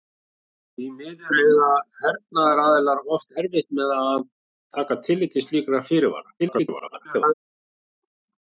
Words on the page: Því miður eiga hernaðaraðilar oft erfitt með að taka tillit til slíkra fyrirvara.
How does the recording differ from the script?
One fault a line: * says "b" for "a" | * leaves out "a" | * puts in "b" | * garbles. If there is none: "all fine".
* garbles